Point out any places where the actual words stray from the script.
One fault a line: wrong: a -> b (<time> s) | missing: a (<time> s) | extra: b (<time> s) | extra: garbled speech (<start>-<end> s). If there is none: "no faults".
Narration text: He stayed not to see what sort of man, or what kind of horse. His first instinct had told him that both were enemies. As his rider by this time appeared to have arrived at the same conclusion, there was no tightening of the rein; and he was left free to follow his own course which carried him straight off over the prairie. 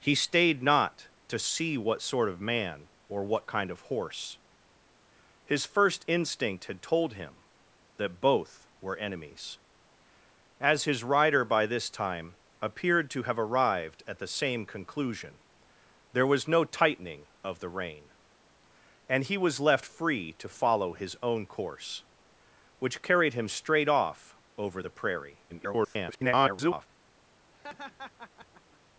extra: garbled speech (25.5-26.9 s)